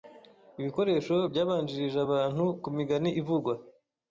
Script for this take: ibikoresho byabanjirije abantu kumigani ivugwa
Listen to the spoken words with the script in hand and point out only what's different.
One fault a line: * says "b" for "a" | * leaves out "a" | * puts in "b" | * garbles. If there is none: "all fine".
all fine